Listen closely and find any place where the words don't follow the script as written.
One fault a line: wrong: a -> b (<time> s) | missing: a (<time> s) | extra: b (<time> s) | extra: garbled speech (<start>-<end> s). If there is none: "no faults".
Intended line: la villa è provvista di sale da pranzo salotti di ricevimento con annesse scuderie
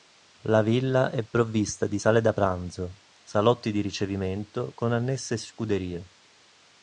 no faults